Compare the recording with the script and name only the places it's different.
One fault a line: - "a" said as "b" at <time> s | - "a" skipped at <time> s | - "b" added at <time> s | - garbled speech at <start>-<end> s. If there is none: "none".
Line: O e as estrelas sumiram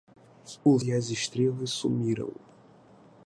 none